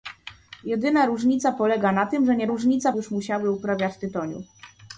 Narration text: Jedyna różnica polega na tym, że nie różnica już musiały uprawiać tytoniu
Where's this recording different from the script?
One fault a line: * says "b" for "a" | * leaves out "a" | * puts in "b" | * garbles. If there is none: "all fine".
all fine